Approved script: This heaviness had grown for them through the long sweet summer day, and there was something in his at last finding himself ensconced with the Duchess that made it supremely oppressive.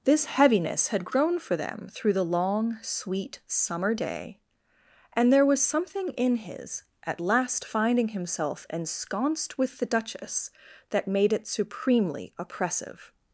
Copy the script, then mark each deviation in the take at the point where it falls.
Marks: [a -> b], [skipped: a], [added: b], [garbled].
This heaviness had grown for them through the long sweet summer day, and there was something in his at last finding himself ensconced with the Duchess that made it supremely oppressive.